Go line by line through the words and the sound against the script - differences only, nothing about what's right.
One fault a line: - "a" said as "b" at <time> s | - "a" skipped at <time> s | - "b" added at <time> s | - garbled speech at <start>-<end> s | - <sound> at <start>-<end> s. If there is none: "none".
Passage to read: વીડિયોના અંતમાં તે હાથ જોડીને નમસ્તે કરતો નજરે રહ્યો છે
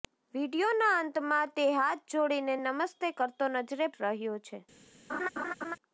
- laugh at 5.1-5.8 s